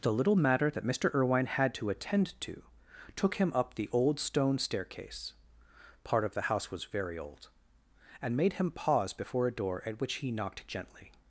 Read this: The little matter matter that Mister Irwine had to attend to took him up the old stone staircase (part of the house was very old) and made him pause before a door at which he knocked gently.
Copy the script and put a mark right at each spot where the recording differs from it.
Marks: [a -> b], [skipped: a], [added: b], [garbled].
The little matter [skipped: matter] that Mister Irwine had to attend to took him up the old stone staircase (part of the house was very old) and made him pause before a door at which he knocked gently.